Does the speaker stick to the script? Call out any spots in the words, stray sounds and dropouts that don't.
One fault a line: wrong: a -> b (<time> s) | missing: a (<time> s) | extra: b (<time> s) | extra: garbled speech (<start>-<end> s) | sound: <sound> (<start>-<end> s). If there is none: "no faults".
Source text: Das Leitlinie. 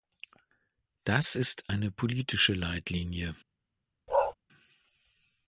extra: ist eine politische (1.3 s)
sound: bark (4.1-4.3 s)